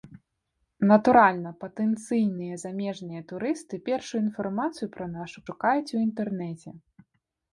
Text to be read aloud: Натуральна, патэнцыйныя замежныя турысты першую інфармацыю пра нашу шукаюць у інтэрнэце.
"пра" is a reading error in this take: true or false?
false